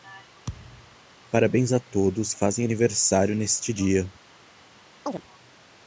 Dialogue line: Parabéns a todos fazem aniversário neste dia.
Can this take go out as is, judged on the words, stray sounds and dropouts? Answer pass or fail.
fail